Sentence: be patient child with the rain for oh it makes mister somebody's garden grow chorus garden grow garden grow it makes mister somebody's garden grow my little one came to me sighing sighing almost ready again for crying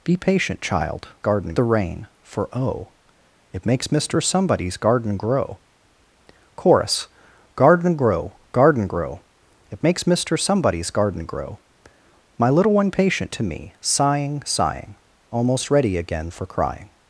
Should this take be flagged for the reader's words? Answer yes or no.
yes